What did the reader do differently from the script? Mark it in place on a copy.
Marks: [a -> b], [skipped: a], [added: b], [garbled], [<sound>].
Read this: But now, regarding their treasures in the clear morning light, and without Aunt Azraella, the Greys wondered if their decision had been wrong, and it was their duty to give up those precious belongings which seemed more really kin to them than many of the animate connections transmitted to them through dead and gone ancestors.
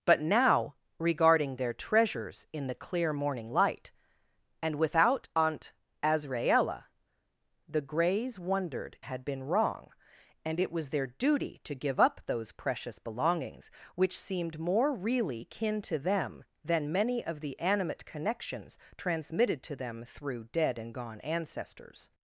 But now, regarding their treasures in the clear morning light, and without Aunt Azraella, the Greys wondered [skipped: if their decision] had been wrong, and it was their duty to give up those precious belongings which seemed more really kin to them than many of the animate connections transmitted to them through dead and gone ancestors.